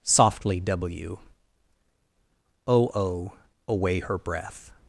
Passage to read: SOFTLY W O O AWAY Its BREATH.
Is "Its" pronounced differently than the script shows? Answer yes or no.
yes